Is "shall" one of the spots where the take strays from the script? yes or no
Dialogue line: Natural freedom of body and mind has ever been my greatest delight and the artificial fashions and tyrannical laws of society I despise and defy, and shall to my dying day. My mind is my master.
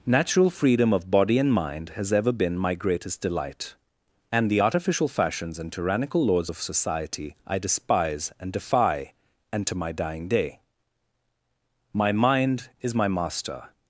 yes